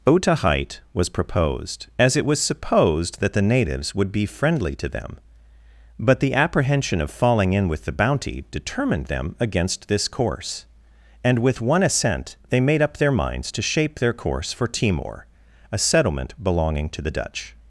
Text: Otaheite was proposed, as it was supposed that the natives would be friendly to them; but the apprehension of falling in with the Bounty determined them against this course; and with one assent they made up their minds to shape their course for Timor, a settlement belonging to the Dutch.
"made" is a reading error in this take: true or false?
false